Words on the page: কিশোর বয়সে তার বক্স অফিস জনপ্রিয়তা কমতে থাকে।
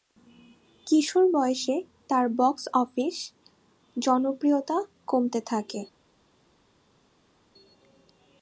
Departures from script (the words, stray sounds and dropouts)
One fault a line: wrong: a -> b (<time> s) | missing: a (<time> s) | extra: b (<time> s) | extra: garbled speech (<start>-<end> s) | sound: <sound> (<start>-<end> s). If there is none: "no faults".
no faults